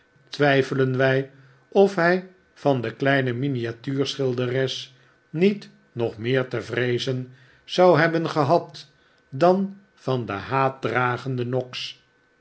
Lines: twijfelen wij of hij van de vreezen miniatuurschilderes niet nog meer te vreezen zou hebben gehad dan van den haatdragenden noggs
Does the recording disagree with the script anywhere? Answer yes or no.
yes